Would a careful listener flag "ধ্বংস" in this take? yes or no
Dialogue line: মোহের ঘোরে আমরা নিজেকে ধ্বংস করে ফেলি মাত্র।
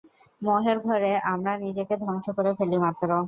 no